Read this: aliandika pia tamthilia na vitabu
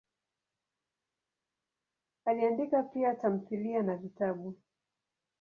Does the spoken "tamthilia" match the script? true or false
true